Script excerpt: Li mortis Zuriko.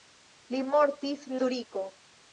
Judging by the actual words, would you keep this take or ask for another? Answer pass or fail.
pass